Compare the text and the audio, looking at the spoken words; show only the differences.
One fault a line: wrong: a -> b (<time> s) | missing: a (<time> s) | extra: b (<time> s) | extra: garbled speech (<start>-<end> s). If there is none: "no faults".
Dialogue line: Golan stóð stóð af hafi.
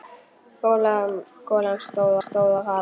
no faults